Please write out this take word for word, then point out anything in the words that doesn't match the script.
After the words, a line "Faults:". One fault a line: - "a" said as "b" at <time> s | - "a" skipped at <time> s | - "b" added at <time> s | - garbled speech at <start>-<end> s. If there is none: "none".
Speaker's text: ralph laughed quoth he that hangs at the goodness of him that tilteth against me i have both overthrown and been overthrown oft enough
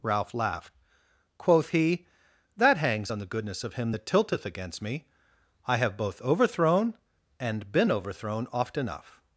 ralph laughed quoth he that hangs on the goodness of him that tilteth against me i have both overthrown and been overthrown oft enough
Faults:
- "at" said as "on" at 3.1 s